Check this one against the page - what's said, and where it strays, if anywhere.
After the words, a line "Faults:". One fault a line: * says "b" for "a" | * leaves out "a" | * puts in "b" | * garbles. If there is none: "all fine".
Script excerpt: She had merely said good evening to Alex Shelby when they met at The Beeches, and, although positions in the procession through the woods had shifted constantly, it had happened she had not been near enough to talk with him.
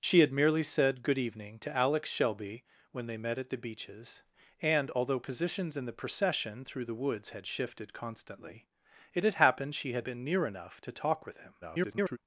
She had merely said good evening to Alex Shelby when they met at The Beeches, and, although positions in the procession through the woods had shifted constantly, it had happened she had been near enough to talk with him. [garbled]
Faults:
* leaves out "not"
* garbles